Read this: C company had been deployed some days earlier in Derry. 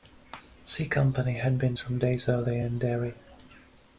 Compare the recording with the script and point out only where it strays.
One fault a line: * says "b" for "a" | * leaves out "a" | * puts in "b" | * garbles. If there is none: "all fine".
* leaves out "deployed"